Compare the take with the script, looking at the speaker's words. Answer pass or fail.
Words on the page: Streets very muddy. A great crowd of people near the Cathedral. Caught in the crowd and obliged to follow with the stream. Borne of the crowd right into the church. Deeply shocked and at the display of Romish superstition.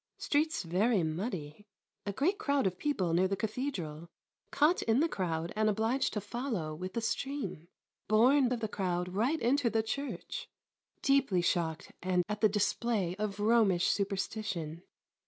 pass